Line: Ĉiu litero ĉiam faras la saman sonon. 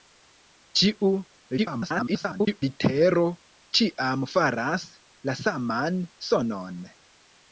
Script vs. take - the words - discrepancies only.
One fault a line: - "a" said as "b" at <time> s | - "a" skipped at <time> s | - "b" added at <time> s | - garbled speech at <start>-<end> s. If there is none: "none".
- garbled speech at 1.6-2.6 s